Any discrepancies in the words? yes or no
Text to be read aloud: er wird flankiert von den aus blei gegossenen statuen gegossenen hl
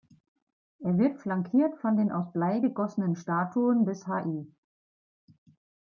yes